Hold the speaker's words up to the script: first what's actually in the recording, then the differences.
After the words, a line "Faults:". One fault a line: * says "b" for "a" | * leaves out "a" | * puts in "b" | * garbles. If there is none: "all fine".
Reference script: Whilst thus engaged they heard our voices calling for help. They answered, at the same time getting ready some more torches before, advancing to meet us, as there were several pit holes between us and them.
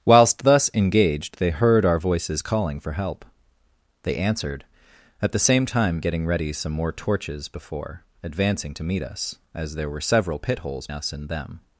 Whilst thus engaged they heard our voices calling for help. They answered, at the same time getting ready some more torches before, advancing to meet us, as there were several pit holes us and them.
Faults:
* leaves out "between"